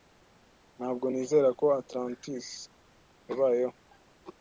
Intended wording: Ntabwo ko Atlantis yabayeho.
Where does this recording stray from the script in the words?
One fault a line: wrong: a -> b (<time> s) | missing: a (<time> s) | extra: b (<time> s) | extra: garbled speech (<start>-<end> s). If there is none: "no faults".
extra: nizera (1.1 s)